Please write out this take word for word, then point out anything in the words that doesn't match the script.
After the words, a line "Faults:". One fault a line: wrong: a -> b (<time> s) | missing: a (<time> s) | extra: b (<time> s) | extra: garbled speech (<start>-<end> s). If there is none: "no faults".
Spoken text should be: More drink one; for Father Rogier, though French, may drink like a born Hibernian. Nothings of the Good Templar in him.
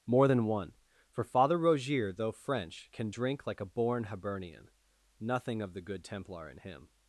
More than one; for Father Rogier, though French, can drink like a born Hibernian. Nothing of the Good Templar in him.
Faults:
wrong: drink -> than (0.2 s)
wrong: may -> can (2.9 s)
wrong: Nothings -> Nothing (5.2 s)